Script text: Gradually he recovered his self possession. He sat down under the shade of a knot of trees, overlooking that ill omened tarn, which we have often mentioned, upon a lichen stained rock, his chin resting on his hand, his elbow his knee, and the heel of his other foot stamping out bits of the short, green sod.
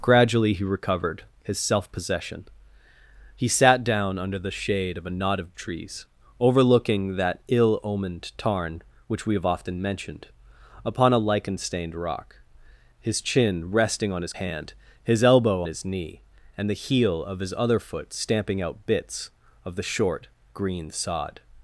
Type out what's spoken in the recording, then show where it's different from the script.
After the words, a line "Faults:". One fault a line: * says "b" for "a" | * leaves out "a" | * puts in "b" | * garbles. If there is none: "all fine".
Gradually he recovered his self possession. He sat down under the shade of a knot of trees, overlooking that ill omened tarn, which we have often mentioned, upon a lichen stained rock, his chin resting on his hand, his elbow his knee, and the heel of his other foot stamping out bits of the short, green sod.
Faults:
all fine